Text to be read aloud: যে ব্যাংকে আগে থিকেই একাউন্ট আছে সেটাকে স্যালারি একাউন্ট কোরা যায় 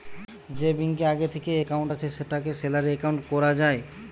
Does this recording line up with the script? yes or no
yes